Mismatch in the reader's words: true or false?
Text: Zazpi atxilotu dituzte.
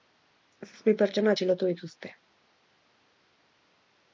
true